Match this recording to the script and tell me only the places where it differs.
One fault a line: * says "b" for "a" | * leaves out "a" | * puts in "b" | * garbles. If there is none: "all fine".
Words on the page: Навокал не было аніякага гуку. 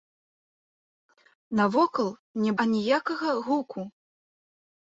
* leaves out "было"